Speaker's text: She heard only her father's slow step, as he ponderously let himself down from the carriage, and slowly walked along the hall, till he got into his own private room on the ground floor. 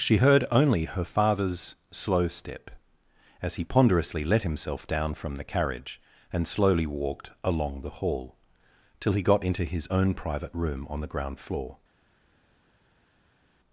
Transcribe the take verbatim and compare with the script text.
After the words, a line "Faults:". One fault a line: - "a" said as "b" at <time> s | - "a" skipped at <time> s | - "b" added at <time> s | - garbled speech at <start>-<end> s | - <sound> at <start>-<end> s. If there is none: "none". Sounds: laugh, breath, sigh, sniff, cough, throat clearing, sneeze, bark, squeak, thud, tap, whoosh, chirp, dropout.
She heard only her father's slow step, as he ponderously let himself down from the carriage, and slowly walked along the hall, till he got into his own private room on the ground floor.
Faults:
none